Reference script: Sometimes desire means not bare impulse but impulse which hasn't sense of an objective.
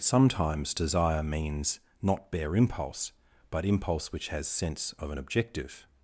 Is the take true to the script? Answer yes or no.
no